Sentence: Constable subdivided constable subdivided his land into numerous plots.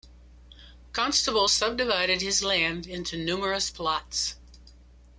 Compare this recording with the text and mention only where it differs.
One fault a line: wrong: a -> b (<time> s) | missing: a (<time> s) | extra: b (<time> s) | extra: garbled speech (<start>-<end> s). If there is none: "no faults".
missing: constable subdivided (2.2 s)